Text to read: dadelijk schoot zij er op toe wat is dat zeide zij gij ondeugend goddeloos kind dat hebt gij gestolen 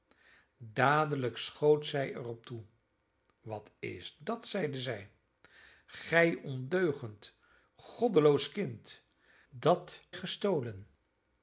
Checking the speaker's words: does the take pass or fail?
fail